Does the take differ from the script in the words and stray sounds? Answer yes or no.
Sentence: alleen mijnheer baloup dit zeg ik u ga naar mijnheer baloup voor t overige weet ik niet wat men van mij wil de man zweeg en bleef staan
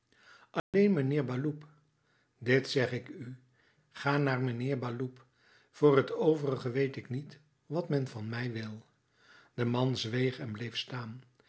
yes